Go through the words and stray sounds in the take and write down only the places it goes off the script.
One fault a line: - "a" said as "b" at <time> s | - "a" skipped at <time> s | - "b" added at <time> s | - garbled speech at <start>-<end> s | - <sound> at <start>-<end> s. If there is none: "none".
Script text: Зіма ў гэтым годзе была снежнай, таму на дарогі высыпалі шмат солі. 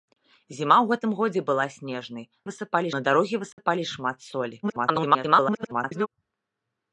- "таму" said as "высыпалі" at 2.5 s
- dropout at 3.5-3.6 s
- garbled speech at 4.6-6.1 s